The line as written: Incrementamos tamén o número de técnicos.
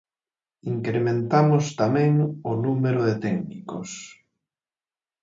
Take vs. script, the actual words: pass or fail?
pass